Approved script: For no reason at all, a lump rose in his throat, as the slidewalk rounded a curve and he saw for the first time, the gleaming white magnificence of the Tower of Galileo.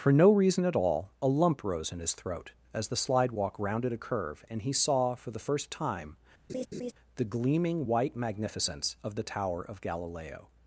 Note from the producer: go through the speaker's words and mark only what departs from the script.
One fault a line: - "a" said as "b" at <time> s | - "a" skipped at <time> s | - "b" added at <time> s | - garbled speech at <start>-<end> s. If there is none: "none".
none